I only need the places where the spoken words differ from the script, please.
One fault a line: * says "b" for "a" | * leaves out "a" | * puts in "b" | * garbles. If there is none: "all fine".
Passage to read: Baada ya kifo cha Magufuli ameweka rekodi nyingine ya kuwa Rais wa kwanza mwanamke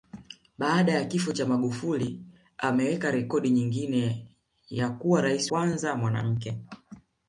* leaves out "wa"